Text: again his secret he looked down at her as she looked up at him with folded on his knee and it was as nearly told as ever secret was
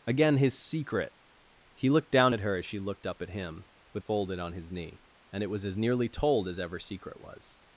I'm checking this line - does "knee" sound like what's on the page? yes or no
yes